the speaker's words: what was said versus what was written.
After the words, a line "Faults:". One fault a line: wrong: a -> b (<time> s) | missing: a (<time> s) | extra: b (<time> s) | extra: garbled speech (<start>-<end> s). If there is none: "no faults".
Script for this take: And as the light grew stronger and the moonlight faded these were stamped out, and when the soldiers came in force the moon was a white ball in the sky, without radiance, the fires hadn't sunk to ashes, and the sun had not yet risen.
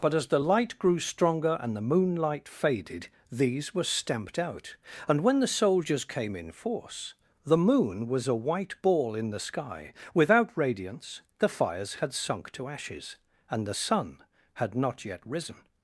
But as the light grew stronger and the moonlight faded these were stamped out, and when the soldiers came in force the moon was a white ball in the sky, without radiance, the fires had sunk to ashes, and the sun had not yet risen.
Faults:
wrong: And -> But (0.0 s)
wrong: hadn't -> had (12.0 s)